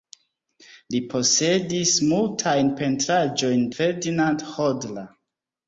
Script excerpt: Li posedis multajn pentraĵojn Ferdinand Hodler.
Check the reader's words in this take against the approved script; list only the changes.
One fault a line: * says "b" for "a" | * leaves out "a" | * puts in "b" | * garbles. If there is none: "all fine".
all fine